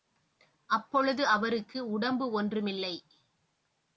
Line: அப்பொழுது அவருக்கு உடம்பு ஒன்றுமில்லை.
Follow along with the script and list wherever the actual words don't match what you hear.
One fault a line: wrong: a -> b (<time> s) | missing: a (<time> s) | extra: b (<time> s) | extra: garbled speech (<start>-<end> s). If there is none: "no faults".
no faults